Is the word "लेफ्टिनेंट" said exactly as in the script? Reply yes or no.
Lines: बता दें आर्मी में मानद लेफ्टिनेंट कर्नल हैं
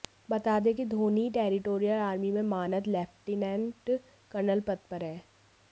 yes